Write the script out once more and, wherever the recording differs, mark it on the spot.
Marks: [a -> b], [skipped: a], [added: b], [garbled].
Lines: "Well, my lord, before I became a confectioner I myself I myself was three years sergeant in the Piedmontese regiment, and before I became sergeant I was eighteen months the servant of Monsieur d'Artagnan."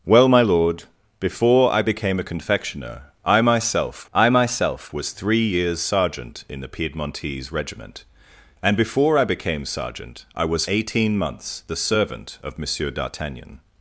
"Well, my lord, before I became a confectioner I myself I myself was three years sergeant in the Piedmontese regiment, and before I became sergeant I was eighteen months the servant of Monsieur d'Artagnan."